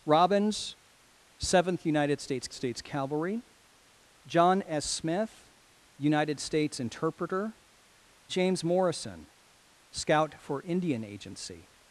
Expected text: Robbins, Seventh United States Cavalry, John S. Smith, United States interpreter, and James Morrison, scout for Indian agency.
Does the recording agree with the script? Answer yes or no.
no